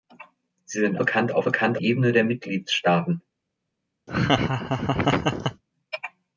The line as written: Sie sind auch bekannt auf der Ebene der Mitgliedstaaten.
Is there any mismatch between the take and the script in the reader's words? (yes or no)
yes